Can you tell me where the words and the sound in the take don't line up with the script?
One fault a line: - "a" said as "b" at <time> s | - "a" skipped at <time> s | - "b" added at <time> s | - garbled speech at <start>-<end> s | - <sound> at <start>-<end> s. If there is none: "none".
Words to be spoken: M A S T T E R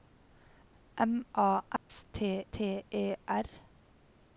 - dropout at 1.8-1.9 s